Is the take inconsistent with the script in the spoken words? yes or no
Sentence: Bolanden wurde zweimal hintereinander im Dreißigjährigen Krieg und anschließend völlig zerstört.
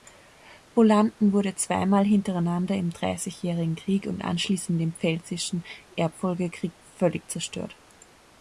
yes